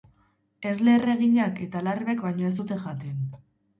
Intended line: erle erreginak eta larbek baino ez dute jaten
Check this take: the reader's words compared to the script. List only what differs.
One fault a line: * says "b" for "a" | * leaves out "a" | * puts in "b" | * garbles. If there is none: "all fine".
all fine